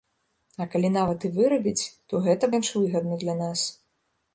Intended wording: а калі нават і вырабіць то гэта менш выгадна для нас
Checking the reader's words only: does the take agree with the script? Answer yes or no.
yes